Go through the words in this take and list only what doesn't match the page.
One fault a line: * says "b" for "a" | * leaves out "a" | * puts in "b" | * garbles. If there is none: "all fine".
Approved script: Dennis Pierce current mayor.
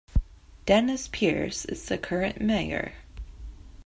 * puts in "is the"